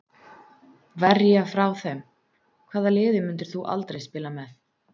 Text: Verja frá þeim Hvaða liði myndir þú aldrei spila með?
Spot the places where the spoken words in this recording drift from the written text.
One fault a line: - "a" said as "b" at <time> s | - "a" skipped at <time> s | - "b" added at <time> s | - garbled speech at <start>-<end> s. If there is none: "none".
none